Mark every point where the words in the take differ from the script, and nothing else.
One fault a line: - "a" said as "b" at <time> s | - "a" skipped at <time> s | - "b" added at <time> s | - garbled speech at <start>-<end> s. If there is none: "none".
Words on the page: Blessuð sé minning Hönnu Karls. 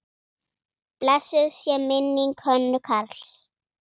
none